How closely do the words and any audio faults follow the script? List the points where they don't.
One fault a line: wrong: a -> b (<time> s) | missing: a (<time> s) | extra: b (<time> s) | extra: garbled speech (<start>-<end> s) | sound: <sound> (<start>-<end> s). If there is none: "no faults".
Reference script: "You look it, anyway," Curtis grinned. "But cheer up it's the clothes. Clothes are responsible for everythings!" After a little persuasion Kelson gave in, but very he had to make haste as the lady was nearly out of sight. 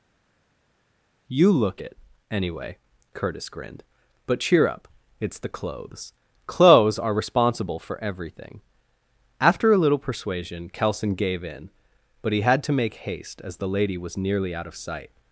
wrong: everythings -> everything (8.0 s)
missing: very (12.3 s)